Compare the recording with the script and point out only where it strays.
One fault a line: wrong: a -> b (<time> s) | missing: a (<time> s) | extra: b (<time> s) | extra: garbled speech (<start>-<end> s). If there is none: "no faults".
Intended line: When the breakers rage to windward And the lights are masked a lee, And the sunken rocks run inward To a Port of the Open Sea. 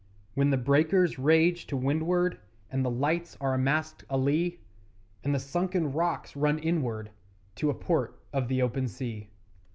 no faults